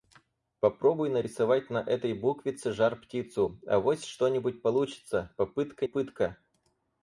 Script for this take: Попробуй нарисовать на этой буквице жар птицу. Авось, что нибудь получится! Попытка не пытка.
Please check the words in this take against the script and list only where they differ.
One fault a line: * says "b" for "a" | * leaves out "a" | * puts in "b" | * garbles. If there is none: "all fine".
* leaves out "не"